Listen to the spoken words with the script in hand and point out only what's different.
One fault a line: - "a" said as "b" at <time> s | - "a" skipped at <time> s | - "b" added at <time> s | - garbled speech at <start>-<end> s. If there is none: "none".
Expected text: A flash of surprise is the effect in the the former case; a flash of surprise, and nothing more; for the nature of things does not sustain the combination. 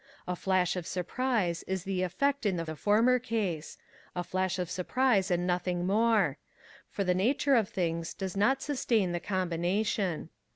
none